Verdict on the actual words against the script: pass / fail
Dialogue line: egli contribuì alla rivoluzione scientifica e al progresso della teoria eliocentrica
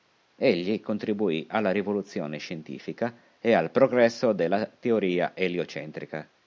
pass